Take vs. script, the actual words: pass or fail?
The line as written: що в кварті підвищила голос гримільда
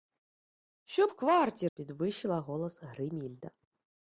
pass